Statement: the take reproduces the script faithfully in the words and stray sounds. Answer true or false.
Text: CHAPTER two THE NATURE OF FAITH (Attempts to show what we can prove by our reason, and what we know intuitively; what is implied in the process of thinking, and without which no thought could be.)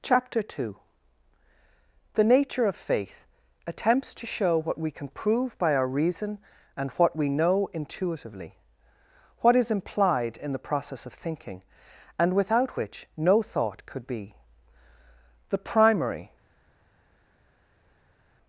false